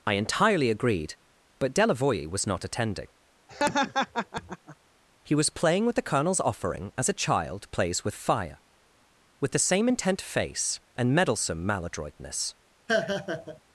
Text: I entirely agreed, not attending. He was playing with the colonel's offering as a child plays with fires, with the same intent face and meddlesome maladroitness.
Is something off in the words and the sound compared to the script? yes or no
yes